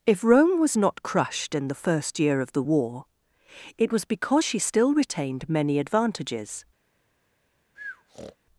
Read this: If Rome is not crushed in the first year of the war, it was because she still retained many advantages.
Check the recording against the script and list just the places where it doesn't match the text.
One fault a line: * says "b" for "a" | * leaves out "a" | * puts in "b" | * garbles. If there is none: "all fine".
* says "was" for "is"